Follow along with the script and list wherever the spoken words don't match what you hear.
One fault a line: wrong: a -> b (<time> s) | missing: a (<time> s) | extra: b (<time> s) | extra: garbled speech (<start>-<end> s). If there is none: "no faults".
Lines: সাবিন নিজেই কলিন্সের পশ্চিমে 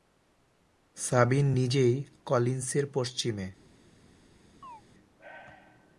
no faults